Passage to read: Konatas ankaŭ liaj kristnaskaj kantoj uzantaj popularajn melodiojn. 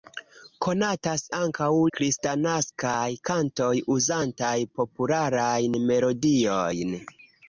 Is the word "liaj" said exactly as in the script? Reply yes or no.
no